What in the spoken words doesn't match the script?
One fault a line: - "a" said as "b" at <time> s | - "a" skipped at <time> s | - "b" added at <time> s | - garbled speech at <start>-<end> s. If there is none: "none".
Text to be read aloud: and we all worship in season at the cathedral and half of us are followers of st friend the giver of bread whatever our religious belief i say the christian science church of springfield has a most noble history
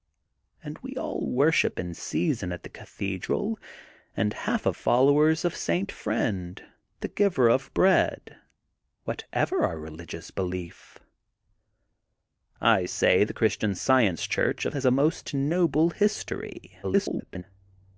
- "us are" skipped at 4.8 s
- "springfield" skipped at 14.8 s
- garbled speech at 16.8-17.4 s